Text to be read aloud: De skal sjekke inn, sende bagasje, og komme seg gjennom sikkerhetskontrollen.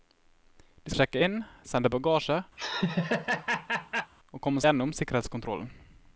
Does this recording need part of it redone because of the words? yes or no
yes